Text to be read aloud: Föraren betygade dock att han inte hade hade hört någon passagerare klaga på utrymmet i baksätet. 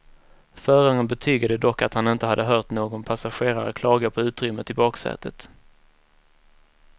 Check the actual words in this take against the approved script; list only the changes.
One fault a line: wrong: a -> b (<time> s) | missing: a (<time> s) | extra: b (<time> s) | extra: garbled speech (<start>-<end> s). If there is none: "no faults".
missing: hade (2.4 s)